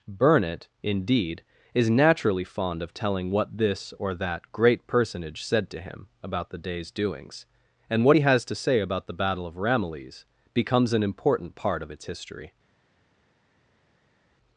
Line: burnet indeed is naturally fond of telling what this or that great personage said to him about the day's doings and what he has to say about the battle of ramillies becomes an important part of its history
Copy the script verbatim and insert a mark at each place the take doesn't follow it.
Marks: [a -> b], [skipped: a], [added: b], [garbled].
burnet indeed is naturally fond of telling what this or that great personage said to him about the day's doings and what he has to say about the battle of ramillies becomes an important part of its history